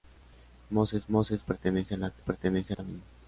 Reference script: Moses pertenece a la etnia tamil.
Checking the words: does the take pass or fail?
fail